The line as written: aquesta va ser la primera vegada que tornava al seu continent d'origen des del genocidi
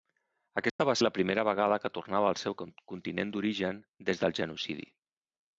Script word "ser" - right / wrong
wrong